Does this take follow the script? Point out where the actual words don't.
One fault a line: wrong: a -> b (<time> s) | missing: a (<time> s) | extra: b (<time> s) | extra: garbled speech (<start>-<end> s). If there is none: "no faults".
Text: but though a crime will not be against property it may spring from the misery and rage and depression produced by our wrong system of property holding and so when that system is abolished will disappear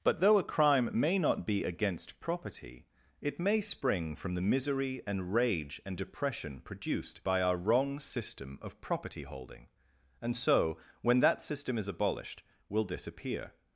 wrong: will -> may (0.9 s)